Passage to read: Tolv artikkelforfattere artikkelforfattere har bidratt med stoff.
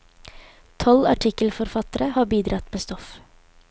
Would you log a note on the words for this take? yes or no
yes